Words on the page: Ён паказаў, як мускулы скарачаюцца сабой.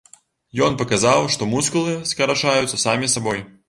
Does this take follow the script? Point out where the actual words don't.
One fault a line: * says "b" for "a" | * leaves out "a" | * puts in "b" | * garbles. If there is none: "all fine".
* says "што" for "як"
* puts in "самі"